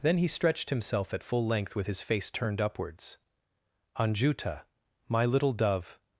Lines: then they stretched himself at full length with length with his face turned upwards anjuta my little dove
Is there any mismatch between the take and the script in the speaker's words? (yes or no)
yes